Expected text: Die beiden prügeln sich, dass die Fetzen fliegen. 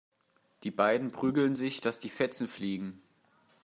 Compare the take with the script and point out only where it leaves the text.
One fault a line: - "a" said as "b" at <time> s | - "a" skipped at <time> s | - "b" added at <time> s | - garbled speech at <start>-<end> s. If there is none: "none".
none